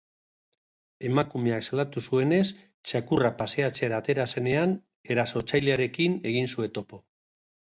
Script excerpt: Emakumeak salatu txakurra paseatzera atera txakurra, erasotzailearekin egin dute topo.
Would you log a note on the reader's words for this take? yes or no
yes